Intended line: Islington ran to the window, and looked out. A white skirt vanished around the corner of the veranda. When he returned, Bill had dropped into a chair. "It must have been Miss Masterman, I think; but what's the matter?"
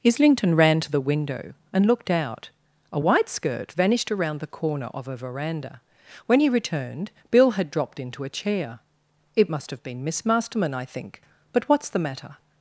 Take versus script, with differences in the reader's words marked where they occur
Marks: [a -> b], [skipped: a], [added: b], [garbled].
Islington ran to the window, and looked out. A white skirt vanished around the corner of [the -> a] veranda. When he returned, Bill had dropped into a chair. "It must have been Miss Masterman, I think; but what's the matter?"